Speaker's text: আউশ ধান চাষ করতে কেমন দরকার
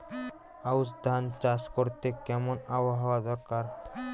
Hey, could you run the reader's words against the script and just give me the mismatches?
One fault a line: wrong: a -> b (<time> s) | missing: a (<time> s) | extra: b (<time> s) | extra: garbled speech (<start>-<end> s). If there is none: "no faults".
extra: আবহাওয়া (2.8 s)